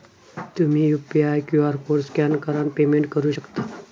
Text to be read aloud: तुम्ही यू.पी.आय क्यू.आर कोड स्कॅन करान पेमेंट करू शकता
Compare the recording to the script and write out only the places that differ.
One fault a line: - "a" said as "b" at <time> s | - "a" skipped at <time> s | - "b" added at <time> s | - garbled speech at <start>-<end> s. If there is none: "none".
none